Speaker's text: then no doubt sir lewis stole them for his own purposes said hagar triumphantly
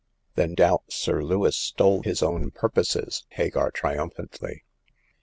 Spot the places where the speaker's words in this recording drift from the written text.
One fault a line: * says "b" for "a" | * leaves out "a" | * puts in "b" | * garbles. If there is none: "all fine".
* leaves out "no"
* leaves out "them for"
* leaves out "said"